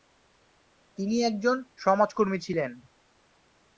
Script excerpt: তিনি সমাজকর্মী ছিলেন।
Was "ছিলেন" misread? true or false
false